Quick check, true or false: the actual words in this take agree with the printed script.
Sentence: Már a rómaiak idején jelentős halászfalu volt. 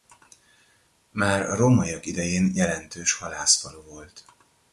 true